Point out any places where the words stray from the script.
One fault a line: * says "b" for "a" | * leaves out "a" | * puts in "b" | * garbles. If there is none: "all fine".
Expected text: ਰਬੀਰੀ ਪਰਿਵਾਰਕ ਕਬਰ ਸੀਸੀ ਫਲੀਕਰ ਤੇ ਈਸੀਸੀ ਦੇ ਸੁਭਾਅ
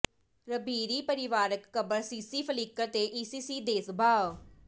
all fine